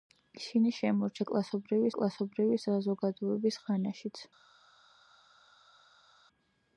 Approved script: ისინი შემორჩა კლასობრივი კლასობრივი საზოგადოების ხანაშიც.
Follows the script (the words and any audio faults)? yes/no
yes